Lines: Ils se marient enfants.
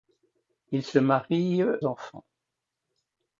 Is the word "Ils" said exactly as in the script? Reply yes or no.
yes